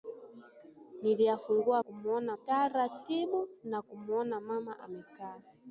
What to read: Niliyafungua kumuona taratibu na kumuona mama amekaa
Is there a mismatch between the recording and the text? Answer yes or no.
no